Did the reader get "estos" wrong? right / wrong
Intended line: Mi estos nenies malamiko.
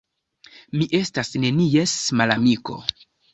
wrong